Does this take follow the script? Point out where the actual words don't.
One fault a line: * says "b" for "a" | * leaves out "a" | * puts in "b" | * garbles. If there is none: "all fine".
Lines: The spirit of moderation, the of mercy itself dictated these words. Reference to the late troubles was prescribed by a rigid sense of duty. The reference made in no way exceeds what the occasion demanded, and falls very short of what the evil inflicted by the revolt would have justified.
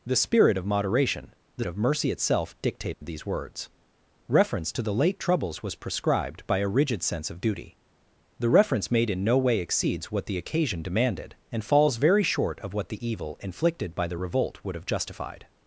all fine